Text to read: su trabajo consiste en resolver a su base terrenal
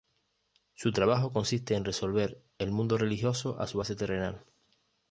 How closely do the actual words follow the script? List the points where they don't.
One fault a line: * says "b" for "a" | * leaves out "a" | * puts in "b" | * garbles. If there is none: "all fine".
* puts in "el mundo religioso"